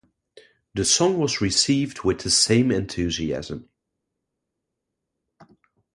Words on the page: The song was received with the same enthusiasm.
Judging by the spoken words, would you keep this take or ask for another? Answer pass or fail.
pass